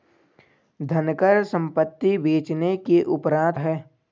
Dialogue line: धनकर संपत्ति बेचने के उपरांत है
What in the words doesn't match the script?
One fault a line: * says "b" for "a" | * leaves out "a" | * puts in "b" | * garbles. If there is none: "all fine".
all fine